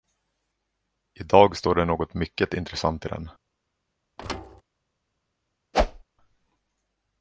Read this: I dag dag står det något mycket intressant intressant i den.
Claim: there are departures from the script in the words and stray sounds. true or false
true